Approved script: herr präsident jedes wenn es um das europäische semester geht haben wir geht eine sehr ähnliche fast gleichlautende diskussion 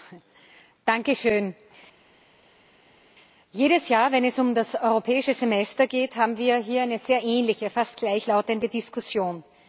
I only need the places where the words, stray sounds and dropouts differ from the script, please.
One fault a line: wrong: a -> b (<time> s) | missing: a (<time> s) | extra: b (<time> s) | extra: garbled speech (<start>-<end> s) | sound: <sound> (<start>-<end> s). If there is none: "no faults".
extra: jahr (3.9 s)
wrong: geht -> hier (6.6 s)